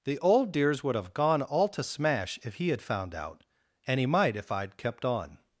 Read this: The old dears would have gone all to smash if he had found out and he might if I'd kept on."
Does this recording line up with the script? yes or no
yes